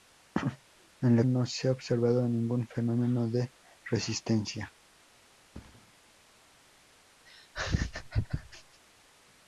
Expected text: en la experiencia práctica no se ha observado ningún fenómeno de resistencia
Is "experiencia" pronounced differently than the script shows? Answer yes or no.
yes